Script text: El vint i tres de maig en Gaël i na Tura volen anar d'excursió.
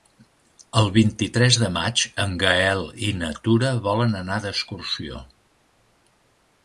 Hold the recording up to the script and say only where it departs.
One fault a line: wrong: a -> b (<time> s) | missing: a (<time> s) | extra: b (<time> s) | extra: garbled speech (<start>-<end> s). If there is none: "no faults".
no faults